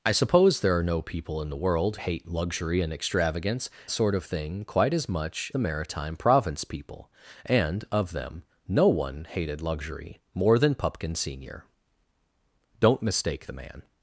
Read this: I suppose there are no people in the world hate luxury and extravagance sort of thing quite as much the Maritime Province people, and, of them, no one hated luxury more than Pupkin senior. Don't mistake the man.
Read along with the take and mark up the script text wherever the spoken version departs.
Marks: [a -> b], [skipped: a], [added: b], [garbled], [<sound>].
I suppose there are no people in the world hate luxury and extravagance sort of thing quite as much the Maritime Province people, and, of them, no one hated luxury more than Pupkin senior. Don't mistake the man.